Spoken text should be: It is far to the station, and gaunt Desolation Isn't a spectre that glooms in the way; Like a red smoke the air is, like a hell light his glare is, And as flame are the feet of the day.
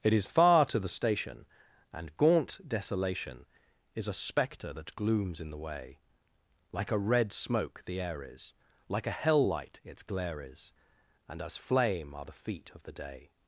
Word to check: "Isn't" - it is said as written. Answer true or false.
false